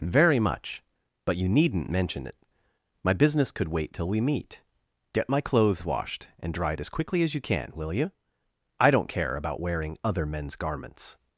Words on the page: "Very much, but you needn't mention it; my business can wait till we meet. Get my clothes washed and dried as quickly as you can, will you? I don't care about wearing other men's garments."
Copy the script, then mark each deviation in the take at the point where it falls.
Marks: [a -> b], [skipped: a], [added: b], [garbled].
"Very much, but you needn't mention it; my business [can -> could] wait till we meet. Get my clothes washed and dried as quickly as you can, will you? I don't care about wearing other men's garments."